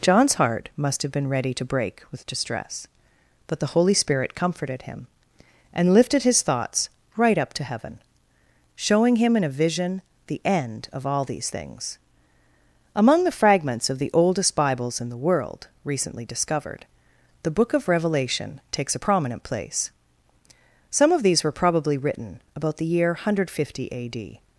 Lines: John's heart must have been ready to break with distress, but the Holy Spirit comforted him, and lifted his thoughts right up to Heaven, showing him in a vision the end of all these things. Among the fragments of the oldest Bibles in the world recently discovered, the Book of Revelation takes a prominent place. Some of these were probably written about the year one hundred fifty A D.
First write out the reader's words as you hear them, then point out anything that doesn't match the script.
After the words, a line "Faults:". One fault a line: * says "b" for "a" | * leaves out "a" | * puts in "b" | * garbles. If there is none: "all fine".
John's heart must have been ready to break with distress, but the Holy Spirit comforted him, and lifted his thoughts right up to Heaven, showing him in a vision the end of all these things. Among the fragments of the oldest Bibles in the world recently discovered, the Book of Revelation takes a prominent place. Some of these were probably written about the year one hundred fifty A D.
Faults:
all fine